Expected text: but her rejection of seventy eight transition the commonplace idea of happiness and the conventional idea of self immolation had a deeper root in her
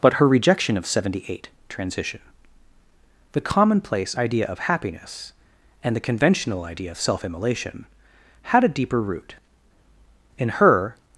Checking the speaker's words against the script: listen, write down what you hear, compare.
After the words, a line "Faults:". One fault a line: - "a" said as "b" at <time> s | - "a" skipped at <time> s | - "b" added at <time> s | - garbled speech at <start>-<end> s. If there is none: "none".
but her rejection of seventy eight transition the commonplace idea of happiness and the conventional idea of self immolation had a deeper root in her
Faults:
none